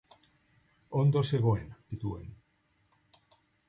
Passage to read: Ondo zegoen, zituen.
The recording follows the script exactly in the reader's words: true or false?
true